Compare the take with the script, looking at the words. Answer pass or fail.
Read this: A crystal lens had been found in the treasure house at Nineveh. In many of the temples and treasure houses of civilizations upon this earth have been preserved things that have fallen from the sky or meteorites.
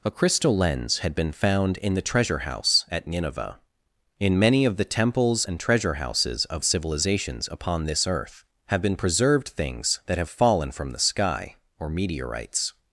pass